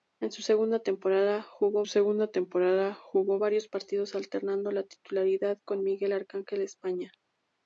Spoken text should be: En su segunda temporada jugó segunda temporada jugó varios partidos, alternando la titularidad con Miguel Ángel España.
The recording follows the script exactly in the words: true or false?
true